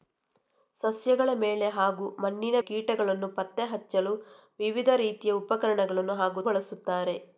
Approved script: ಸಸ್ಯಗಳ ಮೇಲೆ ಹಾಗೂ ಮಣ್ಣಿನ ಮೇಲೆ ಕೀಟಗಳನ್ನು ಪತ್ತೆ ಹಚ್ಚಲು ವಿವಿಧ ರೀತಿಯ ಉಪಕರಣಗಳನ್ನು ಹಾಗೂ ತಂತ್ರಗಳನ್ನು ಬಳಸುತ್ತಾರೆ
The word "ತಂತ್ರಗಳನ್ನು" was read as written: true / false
false